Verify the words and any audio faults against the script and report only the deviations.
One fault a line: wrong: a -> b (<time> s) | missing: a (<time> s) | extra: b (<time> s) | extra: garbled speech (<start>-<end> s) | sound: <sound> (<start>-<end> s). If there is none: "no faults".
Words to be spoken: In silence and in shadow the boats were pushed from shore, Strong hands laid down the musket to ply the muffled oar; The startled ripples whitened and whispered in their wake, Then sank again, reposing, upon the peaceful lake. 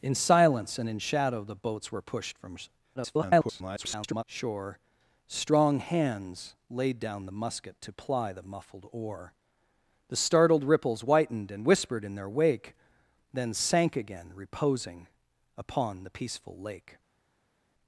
extra: garbled speech (3.0-4.2 s)